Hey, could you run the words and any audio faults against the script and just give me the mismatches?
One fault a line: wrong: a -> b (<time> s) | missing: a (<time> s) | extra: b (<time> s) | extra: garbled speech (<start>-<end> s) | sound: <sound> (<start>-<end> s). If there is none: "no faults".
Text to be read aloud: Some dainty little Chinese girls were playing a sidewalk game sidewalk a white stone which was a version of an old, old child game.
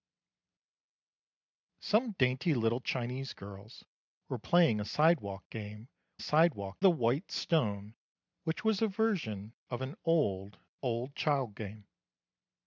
no faults